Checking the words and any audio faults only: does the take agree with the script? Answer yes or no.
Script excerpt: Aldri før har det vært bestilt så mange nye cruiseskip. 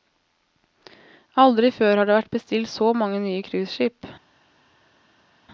yes